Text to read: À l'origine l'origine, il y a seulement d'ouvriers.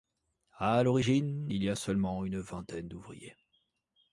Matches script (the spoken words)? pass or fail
fail